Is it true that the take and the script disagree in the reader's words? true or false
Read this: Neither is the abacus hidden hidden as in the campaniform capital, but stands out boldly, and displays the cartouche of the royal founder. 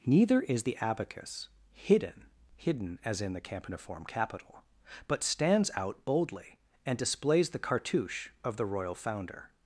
false